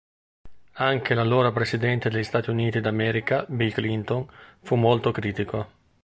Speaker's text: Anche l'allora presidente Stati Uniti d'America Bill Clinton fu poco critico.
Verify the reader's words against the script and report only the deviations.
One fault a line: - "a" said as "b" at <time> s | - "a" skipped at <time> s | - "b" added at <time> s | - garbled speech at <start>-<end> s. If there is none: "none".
- "degli" added at 2.1 s
- "poco" said as "molto" at 4.7 s